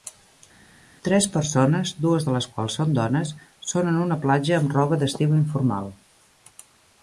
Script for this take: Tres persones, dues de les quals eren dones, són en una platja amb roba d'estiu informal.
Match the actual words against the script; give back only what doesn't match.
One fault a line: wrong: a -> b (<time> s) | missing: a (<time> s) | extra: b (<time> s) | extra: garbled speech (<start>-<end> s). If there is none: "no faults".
wrong: eren -> són (2.8 s)